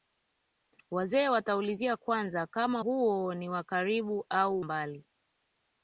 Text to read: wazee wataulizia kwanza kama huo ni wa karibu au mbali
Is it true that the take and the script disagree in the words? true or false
false